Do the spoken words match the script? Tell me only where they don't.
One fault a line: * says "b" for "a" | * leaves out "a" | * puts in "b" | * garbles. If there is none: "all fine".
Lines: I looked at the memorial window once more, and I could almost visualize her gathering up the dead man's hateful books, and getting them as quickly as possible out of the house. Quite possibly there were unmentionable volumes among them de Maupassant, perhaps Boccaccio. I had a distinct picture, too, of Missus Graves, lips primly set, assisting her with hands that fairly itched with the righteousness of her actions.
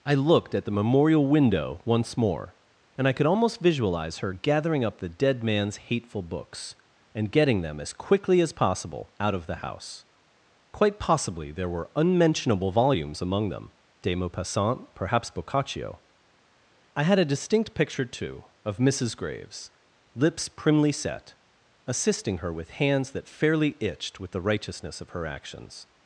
all fine